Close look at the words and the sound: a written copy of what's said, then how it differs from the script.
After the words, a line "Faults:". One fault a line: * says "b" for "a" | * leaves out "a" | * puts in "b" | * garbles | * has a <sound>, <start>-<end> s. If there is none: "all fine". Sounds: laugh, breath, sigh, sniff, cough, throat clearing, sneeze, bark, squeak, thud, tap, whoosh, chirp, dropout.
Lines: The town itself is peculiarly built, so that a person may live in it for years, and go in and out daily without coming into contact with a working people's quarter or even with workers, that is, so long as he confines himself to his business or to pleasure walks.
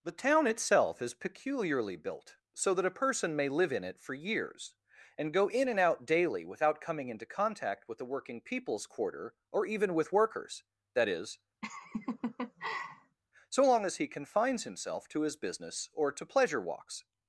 The town itself is peculiarly built, so that a person may live in it for years, and go in and out daily without coming into contact with the working people's quarter or even with workers, that is, so long as he confines himself to his business or to pleasure walks.
Faults:
* says "the" for "a"
* has a laugh, 11.6-13.2 s